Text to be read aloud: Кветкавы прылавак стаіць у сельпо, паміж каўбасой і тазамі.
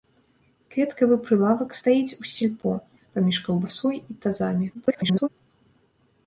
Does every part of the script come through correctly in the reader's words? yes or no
no